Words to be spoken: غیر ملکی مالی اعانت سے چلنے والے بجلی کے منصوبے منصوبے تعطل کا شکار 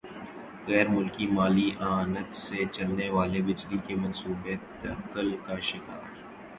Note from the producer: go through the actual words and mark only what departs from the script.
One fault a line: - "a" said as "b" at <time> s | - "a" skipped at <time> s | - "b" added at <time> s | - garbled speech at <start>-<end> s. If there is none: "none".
- "منصوبے" skipped at 4.5 s